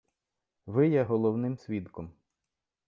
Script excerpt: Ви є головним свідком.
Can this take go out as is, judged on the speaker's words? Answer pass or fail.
pass